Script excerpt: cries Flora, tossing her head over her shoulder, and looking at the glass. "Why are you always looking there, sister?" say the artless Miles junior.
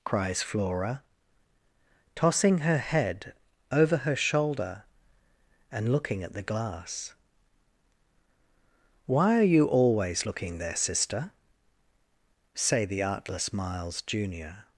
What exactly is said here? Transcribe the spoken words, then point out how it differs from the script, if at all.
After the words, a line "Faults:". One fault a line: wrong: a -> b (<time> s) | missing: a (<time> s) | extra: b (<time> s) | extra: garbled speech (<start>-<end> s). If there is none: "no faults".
cries Flora, tossing her head over her shoulder, and looking at the glass. "Why are you always looking there, sister?" say the artless Miles junior.
Faults:
no faults